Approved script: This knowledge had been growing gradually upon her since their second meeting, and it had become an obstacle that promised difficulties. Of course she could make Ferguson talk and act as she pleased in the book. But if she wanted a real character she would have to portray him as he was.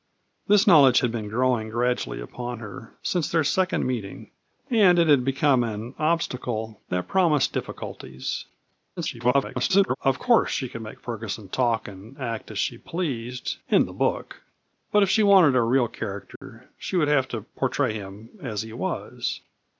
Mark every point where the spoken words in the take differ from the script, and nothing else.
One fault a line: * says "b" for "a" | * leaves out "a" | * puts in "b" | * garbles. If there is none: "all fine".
* garbles